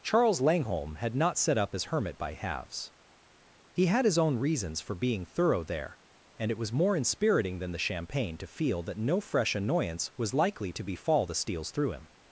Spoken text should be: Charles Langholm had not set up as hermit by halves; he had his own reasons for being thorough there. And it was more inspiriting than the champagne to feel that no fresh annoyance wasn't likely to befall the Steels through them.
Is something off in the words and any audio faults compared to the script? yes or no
yes